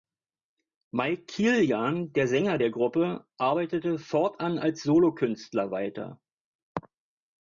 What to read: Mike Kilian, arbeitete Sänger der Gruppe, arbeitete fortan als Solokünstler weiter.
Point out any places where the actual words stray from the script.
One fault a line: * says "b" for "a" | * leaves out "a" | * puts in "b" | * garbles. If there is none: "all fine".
* says "der" for "arbeitete"